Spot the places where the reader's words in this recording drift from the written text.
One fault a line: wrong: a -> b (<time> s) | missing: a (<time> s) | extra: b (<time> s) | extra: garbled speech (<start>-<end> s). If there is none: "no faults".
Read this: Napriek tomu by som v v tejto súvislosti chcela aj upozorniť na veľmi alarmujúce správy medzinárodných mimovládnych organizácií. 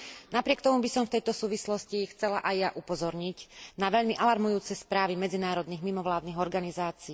missing: v (1.2 s)
extra: ja (2.5 s)